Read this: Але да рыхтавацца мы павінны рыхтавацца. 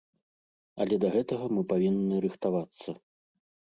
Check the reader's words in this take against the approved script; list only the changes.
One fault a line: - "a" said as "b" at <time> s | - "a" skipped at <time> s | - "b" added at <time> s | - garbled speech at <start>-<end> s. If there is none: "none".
- "рыхтавацца" said as "гэтага" at 1.2 s